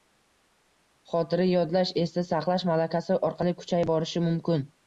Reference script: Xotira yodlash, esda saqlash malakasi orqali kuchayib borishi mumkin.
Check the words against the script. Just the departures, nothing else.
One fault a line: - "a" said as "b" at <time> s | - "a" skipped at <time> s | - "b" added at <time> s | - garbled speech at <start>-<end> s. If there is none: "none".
none